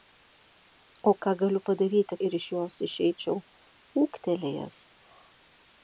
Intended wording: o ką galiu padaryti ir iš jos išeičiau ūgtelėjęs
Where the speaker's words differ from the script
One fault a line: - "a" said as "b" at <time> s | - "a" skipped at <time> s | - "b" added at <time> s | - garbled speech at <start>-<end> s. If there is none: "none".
none